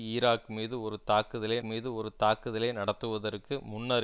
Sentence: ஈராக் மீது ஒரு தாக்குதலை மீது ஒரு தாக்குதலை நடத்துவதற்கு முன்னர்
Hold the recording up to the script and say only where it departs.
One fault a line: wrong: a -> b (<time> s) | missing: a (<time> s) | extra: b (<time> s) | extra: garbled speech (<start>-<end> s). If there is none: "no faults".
no faults